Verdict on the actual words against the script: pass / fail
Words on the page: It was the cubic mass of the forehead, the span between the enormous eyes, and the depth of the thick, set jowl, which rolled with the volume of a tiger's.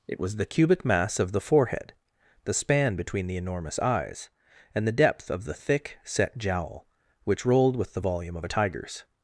pass